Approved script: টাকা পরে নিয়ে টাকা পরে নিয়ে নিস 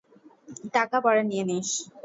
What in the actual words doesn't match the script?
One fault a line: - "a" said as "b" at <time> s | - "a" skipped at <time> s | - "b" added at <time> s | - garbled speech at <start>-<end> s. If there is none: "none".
- "টাকা পরে নিয়ে" skipped at 1.4 s